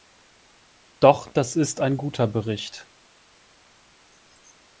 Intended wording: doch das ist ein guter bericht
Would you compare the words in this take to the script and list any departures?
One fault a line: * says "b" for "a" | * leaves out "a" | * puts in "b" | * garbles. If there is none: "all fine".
all fine